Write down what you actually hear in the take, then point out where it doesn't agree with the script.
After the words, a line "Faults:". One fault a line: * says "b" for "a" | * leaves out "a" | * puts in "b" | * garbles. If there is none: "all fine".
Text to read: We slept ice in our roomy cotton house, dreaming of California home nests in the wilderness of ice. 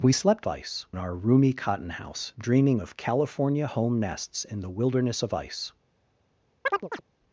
We slept ice in our roomy cotton house, dreaming of California home nests in the wilderness of ice.
Faults:
all fine